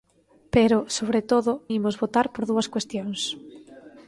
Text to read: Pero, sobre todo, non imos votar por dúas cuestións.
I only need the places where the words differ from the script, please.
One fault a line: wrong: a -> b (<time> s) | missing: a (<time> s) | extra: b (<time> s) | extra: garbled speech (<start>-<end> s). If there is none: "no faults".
missing: non (1.5 s)